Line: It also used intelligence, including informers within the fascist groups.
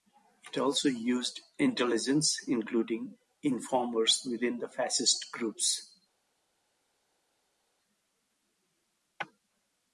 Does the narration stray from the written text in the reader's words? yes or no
no